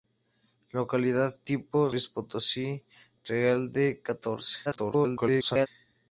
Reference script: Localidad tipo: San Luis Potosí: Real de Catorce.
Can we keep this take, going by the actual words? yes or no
no